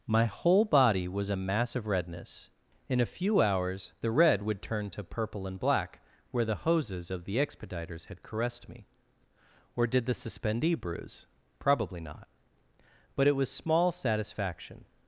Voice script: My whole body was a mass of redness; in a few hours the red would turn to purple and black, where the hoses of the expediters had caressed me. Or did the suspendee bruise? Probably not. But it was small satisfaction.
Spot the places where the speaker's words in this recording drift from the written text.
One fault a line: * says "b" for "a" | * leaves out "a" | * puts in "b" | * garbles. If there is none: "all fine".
all fine